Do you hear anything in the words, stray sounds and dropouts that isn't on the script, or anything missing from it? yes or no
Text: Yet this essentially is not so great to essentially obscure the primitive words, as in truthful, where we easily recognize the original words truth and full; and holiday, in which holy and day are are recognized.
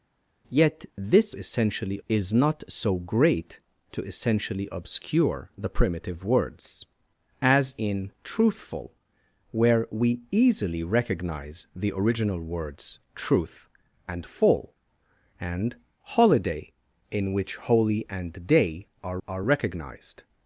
no